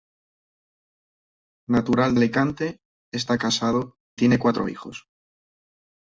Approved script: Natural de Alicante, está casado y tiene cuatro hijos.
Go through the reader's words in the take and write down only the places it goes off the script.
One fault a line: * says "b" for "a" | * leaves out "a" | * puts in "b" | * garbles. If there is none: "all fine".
* leaves out "de"
* leaves out "y"